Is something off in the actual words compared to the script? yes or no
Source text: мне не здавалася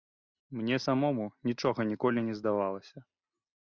yes